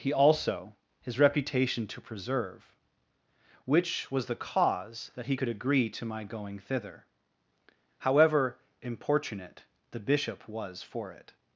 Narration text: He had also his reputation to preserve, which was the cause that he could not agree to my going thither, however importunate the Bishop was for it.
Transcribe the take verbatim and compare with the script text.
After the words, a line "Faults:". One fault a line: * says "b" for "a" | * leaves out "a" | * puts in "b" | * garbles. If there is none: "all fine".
He also his reputation to preserve, which was the cause that he could agree to my going thither, however importunate the Bishop was for it.
Faults:
* leaves out "had"
* leaves out "not"